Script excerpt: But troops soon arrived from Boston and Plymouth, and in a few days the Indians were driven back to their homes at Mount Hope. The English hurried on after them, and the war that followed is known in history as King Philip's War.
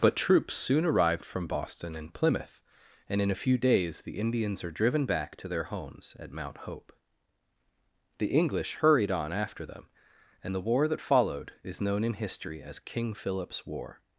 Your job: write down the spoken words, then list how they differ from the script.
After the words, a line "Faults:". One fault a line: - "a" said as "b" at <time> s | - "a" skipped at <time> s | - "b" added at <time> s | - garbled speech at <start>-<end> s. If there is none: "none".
But troops soon arrived from Boston and Plymouth, and in a few days the Indians are driven back to their homes at Mount Hope. The English hurried on after them, and the war that followed is known in history as King Philip's War.
Faults:
- "were" said as "are" at 4.6 s